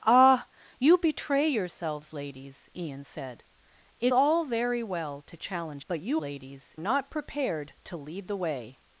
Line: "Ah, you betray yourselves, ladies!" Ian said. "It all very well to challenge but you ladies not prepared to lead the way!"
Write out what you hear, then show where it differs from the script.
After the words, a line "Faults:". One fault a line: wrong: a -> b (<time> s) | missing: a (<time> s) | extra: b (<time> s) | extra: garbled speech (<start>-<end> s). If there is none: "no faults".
"Ah, you betray yourselves, ladies!" Ian said. "It all very well to challenge but you ladies not prepared to lead the way!"
Faults:
no faults